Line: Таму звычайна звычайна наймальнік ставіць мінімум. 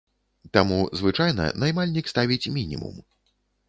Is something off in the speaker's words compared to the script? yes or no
yes